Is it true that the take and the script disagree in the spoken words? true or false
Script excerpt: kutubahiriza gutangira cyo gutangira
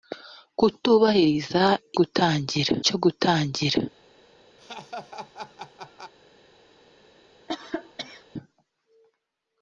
false